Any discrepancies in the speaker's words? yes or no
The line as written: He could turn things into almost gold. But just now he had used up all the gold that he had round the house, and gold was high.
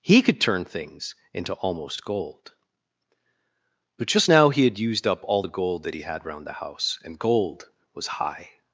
no